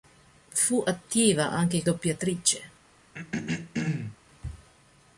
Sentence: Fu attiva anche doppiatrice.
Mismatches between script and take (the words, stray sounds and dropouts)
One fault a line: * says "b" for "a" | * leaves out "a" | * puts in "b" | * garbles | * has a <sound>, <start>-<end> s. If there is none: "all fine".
* has a throat clearing, 3.1-4.2 s